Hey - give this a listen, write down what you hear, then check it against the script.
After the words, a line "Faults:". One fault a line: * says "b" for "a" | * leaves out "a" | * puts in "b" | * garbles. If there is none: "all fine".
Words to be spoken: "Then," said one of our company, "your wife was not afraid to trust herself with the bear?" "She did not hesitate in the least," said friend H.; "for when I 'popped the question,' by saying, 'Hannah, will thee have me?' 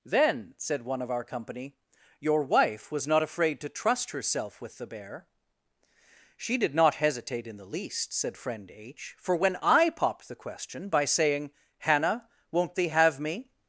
"Then," said one of our company, "your wife was not afraid to trust herself with the bear?" "She did not hesitate in the least," said friend H.; "for when I 'popped the question,' by saying, 'Hannah, won't thee have me?'
Faults:
* says "won't" for "will"